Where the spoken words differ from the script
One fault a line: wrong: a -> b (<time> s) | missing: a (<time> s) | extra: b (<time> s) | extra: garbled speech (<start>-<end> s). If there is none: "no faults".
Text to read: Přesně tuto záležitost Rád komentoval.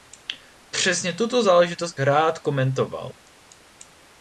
no faults